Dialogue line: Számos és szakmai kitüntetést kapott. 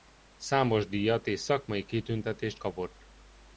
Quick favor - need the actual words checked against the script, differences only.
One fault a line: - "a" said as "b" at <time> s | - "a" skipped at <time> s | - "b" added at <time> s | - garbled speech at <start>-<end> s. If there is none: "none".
- "díjat" added at 0.9 s